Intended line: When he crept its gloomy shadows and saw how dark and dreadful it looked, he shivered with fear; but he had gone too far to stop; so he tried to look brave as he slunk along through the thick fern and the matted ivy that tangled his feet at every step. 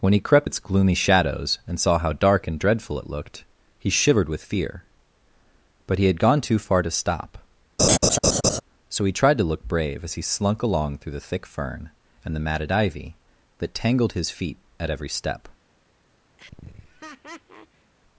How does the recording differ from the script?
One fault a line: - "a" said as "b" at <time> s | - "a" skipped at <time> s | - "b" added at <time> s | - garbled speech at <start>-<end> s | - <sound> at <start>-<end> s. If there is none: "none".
- laugh at 7.8-8.6 s
- laugh at 16.4-17.9 s